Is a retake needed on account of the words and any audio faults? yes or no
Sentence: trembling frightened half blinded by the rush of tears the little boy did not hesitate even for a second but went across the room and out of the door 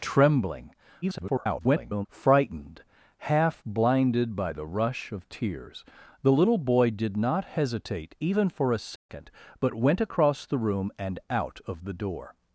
yes